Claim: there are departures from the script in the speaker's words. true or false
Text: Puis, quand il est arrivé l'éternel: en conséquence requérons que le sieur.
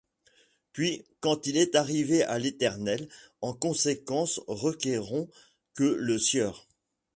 true